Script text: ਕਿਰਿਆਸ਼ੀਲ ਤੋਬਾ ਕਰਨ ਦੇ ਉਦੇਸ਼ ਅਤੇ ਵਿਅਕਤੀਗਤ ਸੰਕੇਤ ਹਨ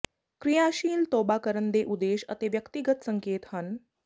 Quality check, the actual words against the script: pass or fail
pass